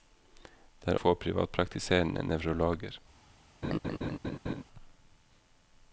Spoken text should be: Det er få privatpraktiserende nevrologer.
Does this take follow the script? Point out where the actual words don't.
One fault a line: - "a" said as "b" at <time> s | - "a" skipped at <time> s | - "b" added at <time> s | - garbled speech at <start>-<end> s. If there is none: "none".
none